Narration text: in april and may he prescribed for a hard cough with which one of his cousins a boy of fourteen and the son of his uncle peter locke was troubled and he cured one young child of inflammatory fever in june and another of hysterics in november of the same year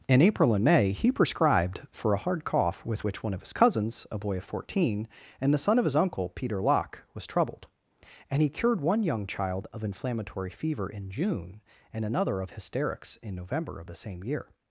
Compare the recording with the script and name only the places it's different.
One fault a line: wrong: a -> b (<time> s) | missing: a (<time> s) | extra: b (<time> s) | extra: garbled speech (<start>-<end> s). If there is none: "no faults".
no faults